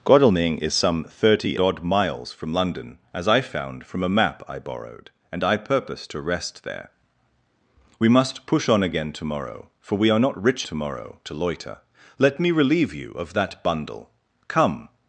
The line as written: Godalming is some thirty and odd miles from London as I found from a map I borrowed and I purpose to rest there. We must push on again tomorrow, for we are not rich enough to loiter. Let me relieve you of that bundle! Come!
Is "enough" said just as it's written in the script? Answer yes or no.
no